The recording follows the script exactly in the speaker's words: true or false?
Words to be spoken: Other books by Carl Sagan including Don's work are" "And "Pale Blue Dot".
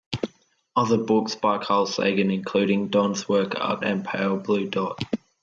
true